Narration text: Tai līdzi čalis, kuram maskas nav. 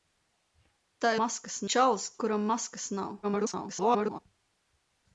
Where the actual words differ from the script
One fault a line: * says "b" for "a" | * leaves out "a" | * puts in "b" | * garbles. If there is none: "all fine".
* says "maskas" for "līdzi"
* garbles